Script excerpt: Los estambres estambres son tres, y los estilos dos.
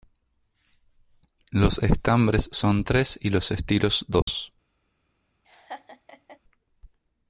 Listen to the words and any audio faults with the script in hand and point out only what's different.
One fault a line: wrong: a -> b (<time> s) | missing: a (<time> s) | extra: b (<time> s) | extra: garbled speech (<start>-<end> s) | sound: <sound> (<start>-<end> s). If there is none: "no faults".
missing: estambres (2.5 s)
sound: dropout (4.2-4.3 s)
sound: laugh (5.4-6.4 s)